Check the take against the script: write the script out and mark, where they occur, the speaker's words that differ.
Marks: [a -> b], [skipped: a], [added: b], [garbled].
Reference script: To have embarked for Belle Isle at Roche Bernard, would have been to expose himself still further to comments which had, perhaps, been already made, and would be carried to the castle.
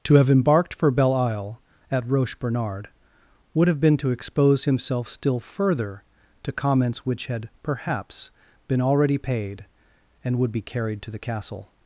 To have embarked for Belle Isle at Roche Bernard, would have been to expose himself still further to comments which had, perhaps, been already [made, -> paid] and would be carried to the castle.